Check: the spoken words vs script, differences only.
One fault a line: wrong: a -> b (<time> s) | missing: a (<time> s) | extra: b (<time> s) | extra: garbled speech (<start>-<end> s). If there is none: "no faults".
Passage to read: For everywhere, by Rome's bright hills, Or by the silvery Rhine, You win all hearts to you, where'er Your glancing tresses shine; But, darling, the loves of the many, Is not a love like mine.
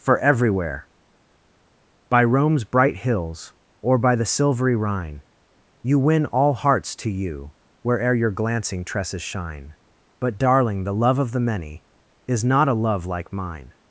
wrong: loves -> love (10.9 s)